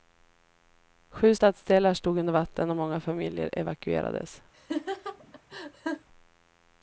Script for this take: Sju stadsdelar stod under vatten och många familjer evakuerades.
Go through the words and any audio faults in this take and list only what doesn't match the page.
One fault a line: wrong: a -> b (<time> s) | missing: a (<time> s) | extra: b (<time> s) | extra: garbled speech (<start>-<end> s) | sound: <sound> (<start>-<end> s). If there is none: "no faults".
sound: laugh (4.5-6.1 s)